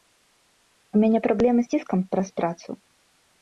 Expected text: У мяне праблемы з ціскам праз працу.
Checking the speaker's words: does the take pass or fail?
pass